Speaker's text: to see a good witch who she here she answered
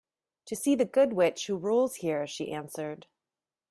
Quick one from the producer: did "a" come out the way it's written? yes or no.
no